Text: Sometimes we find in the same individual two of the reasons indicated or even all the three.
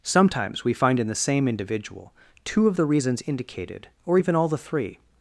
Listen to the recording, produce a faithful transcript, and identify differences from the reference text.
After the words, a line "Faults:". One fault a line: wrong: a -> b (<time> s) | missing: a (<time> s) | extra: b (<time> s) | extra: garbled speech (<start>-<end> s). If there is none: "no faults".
Sometimes we find in the same individual two of the reasons indicated or even all the three.
Faults:
no faults